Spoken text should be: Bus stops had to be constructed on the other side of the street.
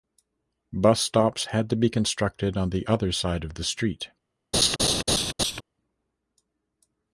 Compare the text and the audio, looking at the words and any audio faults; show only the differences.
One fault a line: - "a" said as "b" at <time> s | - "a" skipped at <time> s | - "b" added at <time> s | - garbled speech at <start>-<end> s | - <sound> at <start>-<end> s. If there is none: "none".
- laugh at 4.5-5.6 s